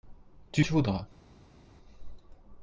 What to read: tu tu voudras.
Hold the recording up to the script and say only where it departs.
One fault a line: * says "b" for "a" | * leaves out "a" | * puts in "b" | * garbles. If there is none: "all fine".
all fine